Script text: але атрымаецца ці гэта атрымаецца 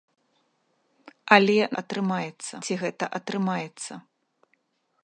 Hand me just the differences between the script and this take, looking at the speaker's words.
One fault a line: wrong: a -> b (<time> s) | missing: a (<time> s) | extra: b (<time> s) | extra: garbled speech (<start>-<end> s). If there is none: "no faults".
no faults